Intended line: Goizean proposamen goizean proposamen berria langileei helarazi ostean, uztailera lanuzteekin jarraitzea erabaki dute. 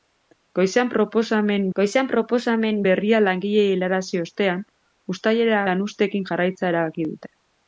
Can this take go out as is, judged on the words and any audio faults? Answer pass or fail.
pass